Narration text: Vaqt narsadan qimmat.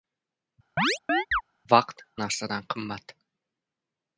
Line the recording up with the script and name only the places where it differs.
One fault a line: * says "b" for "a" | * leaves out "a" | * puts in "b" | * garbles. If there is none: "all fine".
all fine